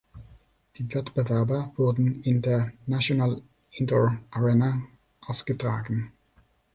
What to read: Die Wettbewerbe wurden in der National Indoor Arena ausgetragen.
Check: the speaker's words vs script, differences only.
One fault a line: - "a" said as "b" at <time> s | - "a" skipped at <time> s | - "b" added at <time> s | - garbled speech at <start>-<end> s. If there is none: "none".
none